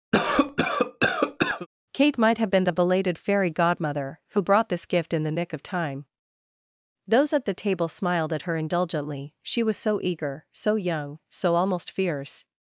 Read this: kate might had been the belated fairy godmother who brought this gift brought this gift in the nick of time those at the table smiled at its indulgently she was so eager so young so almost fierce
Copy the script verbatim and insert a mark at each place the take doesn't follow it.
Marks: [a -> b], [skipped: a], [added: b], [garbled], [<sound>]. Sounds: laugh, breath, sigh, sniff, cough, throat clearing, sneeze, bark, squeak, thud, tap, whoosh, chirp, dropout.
[cough] kate might [had -> have] been the belated fairy godmother who brought this gift [skipped: brought this gift] in the nick of time those at the table smiled at [its -> her] indulgently she was so eager so young so almost fierce